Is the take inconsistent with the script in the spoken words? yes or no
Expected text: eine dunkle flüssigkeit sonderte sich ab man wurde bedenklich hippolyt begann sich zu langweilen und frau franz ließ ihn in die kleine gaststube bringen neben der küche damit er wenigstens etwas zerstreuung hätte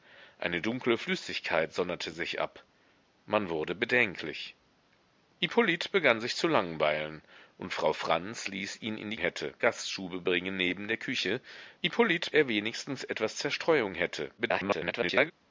yes